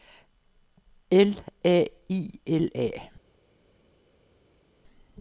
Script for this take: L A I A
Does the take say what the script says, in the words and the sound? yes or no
no